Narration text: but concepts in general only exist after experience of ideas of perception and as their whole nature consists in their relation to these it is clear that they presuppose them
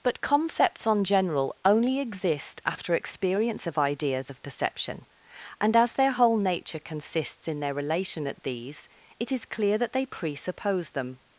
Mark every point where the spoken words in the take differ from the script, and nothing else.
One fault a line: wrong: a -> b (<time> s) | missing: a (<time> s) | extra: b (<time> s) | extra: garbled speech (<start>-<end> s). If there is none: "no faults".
wrong: in -> on (0.9 s)
wrong: to -> at (8.3 s)